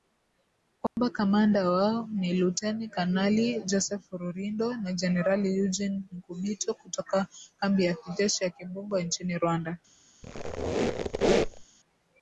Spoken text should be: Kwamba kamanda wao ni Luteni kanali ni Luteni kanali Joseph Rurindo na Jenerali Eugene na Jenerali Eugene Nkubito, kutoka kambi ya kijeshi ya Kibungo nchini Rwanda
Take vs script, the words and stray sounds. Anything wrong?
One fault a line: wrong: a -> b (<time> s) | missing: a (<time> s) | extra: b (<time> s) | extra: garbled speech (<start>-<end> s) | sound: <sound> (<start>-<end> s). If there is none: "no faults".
sound: dropout (0.9-1.0 s)
missing: ni Luteni kanali (3.6 s)
missing: na Jenerali Eugene (6.0 s)
sound: squeak (10.2-11.7 s)